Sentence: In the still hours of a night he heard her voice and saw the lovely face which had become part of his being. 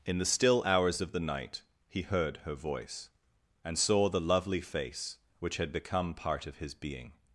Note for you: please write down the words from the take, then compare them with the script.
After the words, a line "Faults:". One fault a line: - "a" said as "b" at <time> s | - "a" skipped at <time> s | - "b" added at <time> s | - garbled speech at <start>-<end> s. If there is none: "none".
In the still hours of the night he heard her voice and saw the lovely face which had become part of his being.
Faults:
- "a" said as "the" at 1.1 s